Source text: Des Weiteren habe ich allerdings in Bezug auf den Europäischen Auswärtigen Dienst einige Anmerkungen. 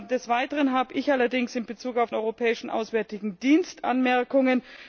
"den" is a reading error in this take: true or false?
true